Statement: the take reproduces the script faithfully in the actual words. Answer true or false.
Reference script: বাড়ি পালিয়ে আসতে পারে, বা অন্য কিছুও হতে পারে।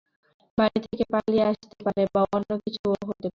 false